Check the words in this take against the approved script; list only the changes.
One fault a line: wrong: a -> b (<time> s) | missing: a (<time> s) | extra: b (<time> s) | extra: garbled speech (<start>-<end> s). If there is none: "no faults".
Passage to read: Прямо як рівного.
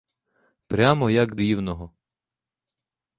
no faults